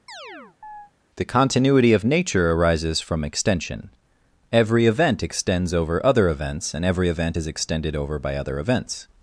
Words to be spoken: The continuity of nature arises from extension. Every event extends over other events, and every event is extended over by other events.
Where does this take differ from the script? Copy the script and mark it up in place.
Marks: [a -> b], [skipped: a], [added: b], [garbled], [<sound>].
[chirp] The continuity of nature arises from extension. Every event extends over other events, and every event is extended over by other events.